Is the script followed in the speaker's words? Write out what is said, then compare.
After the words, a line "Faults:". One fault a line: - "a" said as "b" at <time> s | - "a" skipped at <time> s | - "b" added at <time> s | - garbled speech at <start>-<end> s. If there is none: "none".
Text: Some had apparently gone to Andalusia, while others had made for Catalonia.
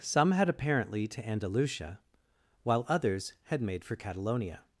Some had apparently to Andalusia, while others had made for Catalonia.
Faults:
- "gone" skipped at 1.1 s